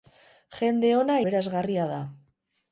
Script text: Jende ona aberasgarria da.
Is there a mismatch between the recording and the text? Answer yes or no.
no